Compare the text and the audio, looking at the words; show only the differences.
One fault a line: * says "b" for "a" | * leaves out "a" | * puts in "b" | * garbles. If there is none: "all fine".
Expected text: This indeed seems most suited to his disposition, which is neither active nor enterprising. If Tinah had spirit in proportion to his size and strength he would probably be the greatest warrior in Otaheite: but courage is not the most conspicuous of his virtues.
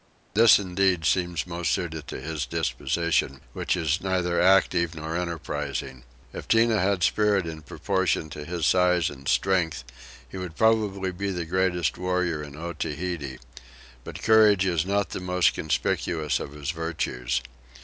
all fine